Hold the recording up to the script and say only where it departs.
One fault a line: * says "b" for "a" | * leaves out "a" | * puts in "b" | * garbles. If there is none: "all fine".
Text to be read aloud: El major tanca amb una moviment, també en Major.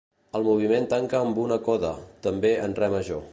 * says "moviment" for "major"
* says "coda" for "moviment"
* puts in "Re"